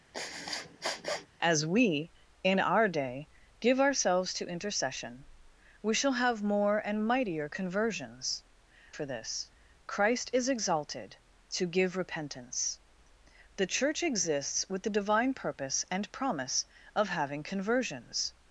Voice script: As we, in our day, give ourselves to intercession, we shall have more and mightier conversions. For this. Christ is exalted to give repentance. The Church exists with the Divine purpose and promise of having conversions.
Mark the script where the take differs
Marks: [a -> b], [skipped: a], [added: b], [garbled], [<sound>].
[sniff] As we, in our day, give ourselves to intercession, we shall have more and mightier conversions. For this. Christ is exalted to give repentance. The Church exists with the Divine purpose and promise of having conversions.